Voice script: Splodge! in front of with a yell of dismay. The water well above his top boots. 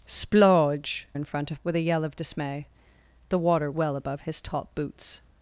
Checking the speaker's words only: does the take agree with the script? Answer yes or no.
yes